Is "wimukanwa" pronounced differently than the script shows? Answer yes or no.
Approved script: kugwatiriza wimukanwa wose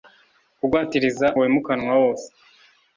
no